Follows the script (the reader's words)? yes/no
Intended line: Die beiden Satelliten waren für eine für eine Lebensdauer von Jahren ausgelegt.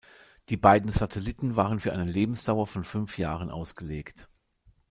no